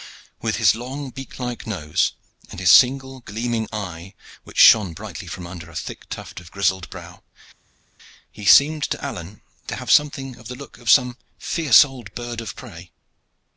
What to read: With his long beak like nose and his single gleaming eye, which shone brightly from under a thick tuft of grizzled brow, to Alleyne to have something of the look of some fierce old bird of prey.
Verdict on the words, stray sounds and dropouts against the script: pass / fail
fail